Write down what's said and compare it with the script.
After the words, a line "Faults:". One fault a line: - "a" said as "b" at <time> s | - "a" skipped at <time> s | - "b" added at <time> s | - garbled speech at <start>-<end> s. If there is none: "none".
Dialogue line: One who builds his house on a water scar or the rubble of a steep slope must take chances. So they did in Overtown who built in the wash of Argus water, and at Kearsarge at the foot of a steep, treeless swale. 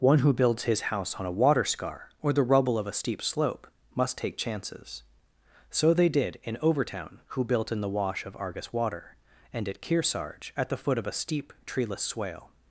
One who builds his house on a water scar or the rubble of a steep slope must take chances. So they did in Overtown who built in the wash of Argus water, and at Kearsarge at the foot of a steep, treeless swale.
Faults:
none